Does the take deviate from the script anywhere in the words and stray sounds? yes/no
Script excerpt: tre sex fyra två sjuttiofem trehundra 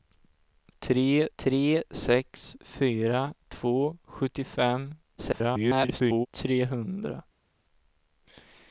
yes